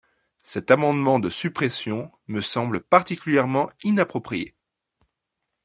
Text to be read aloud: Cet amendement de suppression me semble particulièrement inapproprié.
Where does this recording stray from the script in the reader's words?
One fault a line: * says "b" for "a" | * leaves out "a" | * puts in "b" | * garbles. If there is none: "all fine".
all fine